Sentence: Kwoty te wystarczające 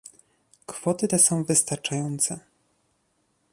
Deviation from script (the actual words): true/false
true